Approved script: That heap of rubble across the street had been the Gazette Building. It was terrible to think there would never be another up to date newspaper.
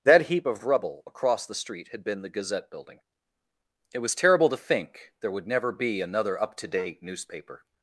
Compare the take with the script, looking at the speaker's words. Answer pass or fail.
pass